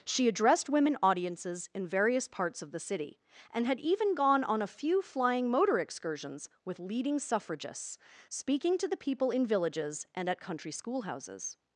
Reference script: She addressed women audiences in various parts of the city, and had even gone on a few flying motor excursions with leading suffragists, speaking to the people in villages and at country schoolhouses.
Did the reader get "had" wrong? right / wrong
right